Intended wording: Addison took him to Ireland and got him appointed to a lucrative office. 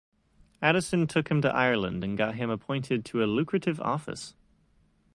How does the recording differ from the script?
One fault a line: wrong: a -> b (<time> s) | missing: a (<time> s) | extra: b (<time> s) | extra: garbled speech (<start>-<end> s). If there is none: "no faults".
no faults